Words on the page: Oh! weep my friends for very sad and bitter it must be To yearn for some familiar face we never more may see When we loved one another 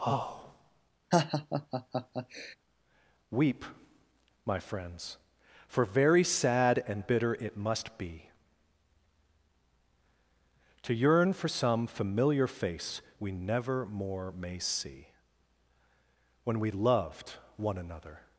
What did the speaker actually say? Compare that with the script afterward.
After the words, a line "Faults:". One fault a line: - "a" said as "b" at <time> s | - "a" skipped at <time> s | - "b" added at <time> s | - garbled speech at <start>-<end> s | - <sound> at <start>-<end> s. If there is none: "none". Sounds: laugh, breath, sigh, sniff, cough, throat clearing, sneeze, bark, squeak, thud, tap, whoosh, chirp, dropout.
Oh! weep my friends for very sad and bitter it must be To yearn for some familiar face we never more may see When we loved one another
Faults:
- laugh at 1.1-2.6 s